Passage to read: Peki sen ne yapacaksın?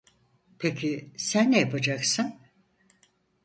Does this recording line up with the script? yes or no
yes